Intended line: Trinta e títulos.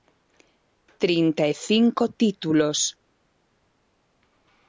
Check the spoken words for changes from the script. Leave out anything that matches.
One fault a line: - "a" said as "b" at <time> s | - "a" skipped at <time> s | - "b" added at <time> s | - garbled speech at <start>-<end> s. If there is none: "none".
- "cinco" added at 1.7 s